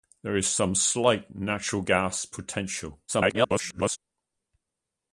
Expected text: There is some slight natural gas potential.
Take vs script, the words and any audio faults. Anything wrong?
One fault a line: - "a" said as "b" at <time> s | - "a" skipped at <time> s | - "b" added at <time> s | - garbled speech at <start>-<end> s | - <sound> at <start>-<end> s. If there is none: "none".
- garbled speech at 3.1-4.0 s